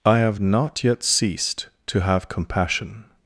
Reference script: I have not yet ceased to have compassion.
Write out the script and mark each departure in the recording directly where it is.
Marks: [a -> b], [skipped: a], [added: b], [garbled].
I have not yet ceased to have compassion.